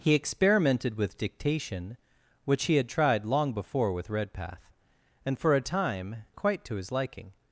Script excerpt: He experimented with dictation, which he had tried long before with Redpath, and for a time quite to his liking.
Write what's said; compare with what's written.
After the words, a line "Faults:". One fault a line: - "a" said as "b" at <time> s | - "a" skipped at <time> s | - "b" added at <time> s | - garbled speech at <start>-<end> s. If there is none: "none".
He experimented with dictation, which he had tried long before with Redpath, and for a time quite to his liking.
Faults:
none